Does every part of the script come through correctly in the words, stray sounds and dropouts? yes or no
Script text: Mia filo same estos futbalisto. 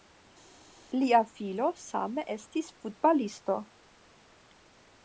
no